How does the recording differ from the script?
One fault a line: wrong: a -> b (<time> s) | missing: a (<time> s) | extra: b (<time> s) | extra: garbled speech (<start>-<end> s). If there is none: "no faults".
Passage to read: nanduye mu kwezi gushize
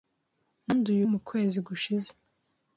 no faults